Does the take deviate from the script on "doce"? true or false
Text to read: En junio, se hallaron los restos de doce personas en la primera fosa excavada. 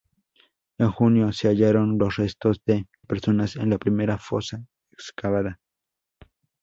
true